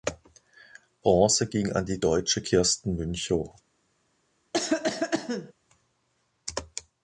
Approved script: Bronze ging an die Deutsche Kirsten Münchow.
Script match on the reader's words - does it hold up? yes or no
yes